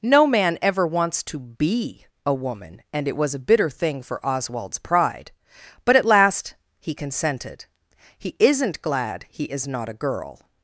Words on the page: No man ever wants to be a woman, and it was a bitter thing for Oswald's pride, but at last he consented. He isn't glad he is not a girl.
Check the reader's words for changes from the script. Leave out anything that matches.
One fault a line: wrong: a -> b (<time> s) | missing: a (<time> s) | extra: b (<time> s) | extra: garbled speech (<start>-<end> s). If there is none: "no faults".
no faults